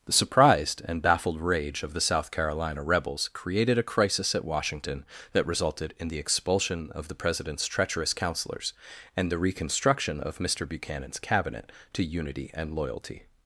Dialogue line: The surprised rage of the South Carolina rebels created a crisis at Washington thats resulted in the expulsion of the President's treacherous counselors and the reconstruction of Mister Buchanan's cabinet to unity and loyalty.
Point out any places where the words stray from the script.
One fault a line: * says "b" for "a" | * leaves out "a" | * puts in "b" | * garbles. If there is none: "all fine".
* puts in "and baffled"
* says "that" for "thats"